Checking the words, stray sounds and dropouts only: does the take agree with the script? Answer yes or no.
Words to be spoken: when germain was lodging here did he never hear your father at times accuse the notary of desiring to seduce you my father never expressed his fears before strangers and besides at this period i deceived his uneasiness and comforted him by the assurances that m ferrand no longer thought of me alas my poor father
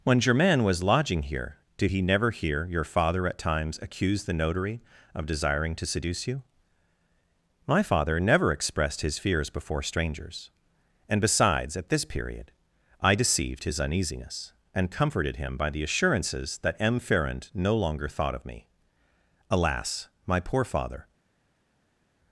yes